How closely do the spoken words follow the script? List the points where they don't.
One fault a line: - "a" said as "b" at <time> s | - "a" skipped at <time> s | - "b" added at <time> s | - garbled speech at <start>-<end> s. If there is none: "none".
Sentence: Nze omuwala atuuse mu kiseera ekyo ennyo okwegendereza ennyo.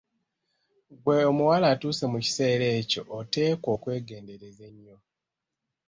- "Nze" said as "Ggwe" at 0.9 s
- "ennyo" said as "oteekwa" at 3.2 s